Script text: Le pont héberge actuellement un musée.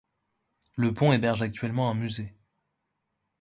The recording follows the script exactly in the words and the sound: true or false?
true